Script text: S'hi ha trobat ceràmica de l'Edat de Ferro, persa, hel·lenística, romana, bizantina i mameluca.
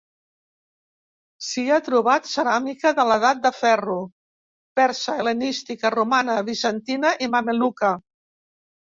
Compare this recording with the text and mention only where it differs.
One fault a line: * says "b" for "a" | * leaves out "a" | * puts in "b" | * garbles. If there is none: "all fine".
all fine